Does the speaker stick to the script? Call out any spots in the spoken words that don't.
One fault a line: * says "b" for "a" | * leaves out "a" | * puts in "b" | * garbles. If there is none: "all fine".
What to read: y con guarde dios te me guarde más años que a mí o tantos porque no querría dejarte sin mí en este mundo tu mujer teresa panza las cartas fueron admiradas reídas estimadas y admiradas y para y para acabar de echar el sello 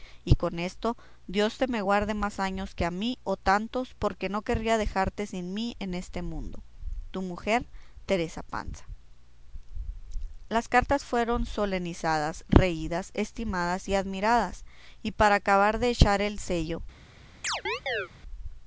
* says "esto" for "guarde"
* says "solenizadas" for "admiradas"
* leaves out "y para"